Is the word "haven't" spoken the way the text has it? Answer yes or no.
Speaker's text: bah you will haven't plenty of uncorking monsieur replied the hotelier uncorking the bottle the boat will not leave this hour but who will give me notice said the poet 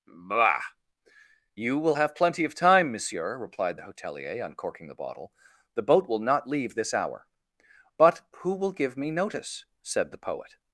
no